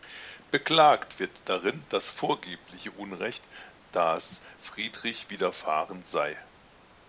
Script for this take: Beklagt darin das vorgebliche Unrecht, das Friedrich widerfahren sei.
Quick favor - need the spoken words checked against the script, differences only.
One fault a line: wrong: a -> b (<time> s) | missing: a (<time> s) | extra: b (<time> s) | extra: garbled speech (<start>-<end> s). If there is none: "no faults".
extra: wird (1.2 s)